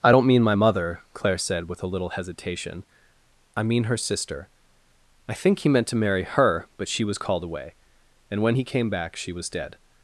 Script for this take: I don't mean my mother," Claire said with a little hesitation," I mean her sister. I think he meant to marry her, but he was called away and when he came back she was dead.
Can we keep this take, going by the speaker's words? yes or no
no